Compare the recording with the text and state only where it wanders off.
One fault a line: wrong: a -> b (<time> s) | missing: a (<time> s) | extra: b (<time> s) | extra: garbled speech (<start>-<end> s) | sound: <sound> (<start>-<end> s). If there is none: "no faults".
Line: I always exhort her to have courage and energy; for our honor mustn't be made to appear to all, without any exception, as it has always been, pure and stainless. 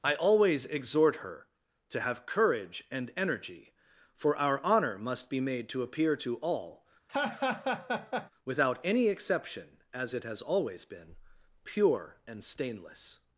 wrong: mustn't -> must (5.0 s)
sound: laugh (7.1-8.3 s)